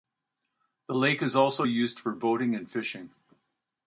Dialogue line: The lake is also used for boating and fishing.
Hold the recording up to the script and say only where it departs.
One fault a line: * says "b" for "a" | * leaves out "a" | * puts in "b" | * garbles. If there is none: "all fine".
all fine